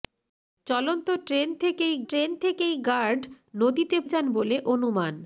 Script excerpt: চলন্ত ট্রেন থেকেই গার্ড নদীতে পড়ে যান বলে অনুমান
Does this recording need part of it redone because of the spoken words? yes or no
yes